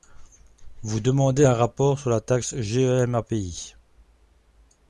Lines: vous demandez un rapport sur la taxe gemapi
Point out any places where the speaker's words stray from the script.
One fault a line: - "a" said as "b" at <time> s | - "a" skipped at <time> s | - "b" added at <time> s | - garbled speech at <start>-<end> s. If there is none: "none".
none